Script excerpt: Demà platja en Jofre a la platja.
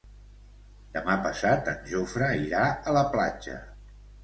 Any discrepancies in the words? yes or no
yes